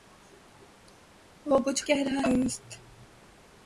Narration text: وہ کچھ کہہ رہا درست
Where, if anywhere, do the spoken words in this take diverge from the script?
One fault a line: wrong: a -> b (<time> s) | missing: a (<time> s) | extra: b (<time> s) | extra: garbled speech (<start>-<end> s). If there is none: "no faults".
no faults